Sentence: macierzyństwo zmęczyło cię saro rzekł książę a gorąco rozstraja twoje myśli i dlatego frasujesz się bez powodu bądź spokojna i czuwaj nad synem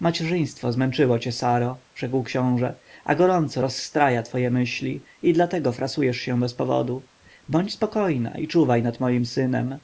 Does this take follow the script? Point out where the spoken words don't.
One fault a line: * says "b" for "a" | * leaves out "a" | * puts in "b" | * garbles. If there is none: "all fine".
* puts in "moim"